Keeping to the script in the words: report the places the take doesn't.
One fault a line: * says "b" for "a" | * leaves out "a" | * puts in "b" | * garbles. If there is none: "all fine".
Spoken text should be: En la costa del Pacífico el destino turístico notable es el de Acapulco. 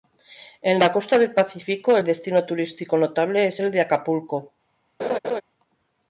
all fine